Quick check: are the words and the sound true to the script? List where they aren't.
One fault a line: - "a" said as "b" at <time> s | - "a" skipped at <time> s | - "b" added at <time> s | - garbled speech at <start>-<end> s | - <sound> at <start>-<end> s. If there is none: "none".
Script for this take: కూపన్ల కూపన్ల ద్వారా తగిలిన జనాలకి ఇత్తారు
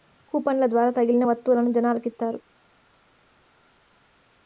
- "కూపన్ల" skipped at 0.7 s
- "వత్తువులను" added at 1.2 s